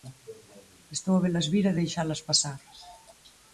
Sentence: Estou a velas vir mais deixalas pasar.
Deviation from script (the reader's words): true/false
true